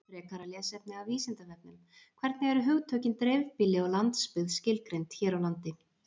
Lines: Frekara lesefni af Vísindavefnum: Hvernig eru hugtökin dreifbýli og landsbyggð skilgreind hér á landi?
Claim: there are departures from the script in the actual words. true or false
false